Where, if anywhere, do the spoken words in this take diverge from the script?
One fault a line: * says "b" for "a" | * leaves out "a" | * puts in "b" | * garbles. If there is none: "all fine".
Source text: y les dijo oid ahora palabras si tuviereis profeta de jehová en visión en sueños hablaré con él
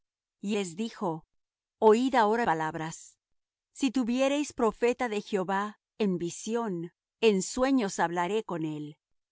all fine